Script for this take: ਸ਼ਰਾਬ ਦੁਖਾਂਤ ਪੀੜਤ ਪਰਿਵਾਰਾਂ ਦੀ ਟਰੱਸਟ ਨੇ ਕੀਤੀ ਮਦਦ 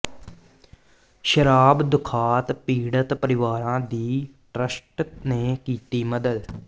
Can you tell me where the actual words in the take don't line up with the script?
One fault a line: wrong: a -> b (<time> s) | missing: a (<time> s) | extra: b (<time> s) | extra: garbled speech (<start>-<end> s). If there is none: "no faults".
no faults